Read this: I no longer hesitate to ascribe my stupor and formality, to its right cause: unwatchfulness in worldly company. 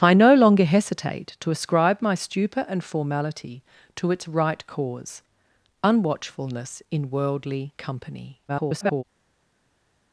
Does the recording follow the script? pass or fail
fail